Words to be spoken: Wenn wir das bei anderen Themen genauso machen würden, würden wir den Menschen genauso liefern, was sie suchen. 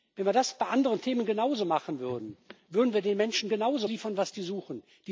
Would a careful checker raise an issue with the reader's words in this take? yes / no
no